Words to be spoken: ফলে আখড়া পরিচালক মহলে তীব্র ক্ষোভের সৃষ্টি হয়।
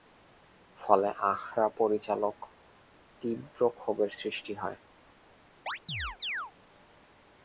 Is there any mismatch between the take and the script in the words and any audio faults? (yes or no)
yes